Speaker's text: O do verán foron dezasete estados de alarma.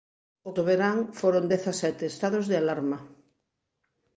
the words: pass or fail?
pass